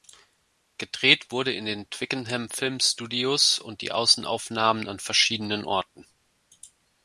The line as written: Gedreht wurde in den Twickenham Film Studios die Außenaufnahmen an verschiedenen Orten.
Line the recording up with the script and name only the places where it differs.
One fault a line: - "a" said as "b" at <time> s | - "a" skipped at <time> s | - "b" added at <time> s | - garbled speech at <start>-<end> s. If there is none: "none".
- "und" added at 3.6 s